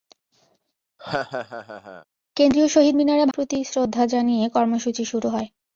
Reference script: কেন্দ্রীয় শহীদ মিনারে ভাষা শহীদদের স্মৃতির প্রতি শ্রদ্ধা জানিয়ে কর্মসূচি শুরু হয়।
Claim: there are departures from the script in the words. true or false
true